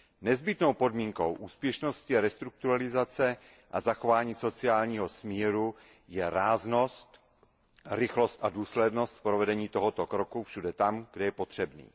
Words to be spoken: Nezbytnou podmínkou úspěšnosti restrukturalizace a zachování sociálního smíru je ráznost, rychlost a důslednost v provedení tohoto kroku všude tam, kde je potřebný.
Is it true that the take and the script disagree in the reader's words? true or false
false